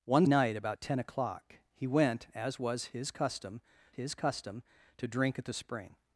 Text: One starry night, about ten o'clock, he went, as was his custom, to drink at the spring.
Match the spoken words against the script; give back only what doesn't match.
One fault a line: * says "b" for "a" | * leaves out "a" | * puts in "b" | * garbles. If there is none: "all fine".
* leaves out "starry"
* puts in "his custom"